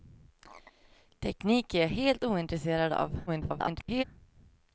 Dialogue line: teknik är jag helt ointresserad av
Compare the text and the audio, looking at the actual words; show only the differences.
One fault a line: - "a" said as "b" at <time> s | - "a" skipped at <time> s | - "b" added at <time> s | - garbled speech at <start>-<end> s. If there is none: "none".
- garbled speech at 3.3-4.0 s